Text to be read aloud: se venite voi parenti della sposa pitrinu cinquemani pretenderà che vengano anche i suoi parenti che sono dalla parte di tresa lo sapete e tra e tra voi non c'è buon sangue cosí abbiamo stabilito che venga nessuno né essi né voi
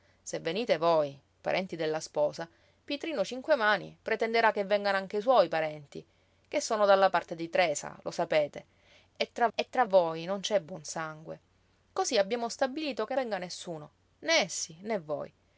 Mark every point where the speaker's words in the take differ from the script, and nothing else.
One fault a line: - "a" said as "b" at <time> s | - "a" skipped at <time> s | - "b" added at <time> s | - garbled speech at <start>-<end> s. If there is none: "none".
none